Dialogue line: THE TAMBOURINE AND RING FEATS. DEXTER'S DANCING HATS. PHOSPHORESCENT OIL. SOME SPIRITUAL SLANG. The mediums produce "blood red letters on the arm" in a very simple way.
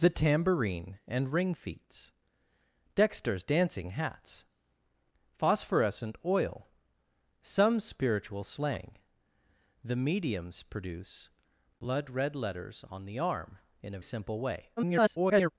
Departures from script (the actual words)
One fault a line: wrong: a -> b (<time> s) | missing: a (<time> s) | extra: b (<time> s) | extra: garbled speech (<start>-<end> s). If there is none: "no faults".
missing: very (14.0 s)
extra: garbled speech (14.8-15.5 s)